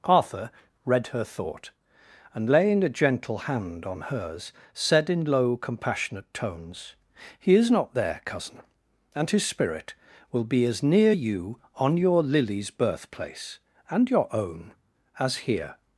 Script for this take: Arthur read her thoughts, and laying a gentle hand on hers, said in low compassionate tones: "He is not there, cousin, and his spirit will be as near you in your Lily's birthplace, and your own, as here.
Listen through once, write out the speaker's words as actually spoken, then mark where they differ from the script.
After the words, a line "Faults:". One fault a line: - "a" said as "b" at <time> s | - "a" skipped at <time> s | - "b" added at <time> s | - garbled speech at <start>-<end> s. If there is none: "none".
Arthur read her thought, and laying a gentle hand on hers, said in low compassionate tones: "He is not there, cousin, and his spirit will be as near you on your Lily's birthplace, and your own, as here.
Faults:
- "thoughts" said as "thought" at 1.2 s
- "in" said as "on" at 11.7 s